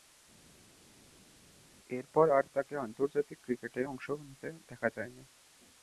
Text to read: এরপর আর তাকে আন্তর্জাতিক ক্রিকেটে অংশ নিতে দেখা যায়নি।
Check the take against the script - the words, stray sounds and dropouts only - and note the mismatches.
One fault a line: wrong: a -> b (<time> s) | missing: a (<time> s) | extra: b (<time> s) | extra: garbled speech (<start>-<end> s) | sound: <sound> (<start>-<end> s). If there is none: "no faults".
no faults